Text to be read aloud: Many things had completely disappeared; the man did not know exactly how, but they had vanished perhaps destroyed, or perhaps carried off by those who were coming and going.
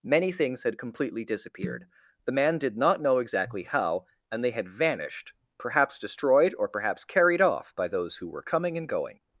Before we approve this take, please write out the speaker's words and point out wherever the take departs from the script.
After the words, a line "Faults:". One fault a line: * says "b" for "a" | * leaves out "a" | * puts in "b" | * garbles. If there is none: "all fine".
Many things had completely disappeared; the man did not know exactly how, and they had vanished perhaps destroyed, or perhaps carried off by those who were coming and going.
Faults:
* says "and" for "but"